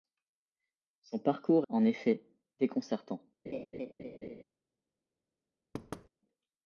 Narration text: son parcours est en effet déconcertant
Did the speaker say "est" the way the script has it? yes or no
no